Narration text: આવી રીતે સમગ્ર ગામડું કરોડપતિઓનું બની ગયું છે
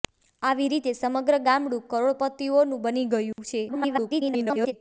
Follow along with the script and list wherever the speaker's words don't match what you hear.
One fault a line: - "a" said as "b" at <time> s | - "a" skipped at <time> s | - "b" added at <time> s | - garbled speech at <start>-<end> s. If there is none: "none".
- garbled speech at 3.7-4.7 s